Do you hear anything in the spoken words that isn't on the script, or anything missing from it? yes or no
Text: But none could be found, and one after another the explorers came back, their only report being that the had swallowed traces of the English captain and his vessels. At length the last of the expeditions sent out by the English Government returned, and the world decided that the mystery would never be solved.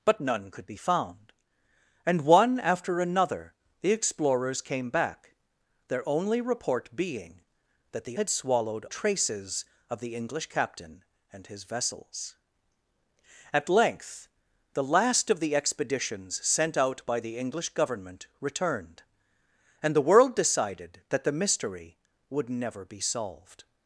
no